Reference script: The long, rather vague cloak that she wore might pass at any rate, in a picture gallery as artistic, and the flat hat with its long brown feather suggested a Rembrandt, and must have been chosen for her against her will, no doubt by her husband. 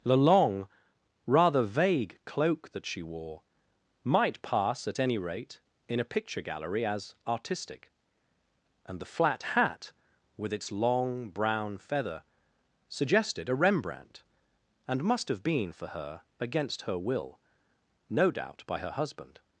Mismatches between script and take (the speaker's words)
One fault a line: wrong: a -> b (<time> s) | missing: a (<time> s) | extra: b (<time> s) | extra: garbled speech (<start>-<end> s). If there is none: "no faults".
missing: chosen (15.7 s)